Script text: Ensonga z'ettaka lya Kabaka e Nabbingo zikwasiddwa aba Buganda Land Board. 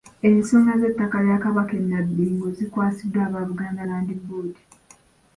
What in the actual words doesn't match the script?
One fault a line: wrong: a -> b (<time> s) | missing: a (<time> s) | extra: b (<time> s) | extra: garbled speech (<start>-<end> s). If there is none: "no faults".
no faults